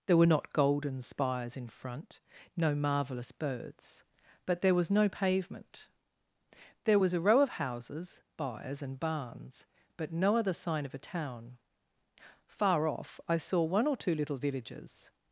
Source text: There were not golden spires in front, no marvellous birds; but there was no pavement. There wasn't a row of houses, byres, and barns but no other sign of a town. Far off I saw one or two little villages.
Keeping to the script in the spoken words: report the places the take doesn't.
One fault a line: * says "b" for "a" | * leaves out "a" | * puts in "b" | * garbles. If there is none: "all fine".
* says "was" for "wasn't"